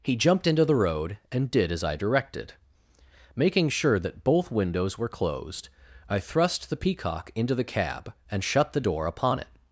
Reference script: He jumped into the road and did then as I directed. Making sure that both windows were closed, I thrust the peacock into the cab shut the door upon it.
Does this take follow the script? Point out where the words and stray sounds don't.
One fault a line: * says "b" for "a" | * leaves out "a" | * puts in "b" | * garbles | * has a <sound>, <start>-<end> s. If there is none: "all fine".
* leaves out "then"
* puts in "and"